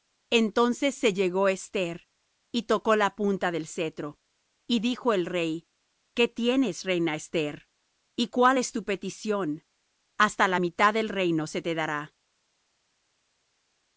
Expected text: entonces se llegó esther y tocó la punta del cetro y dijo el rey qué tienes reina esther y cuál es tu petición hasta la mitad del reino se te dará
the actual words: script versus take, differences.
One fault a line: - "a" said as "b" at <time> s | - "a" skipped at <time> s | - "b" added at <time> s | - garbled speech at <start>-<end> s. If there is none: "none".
none